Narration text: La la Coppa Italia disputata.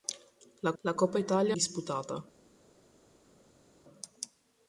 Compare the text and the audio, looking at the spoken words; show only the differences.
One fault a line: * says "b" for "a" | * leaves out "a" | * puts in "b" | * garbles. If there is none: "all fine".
all fine